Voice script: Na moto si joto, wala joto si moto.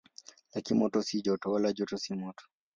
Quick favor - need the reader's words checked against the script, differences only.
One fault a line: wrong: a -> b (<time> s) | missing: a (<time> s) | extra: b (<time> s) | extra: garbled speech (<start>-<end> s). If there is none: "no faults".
wrong: Na -> Lakini (0.6 s)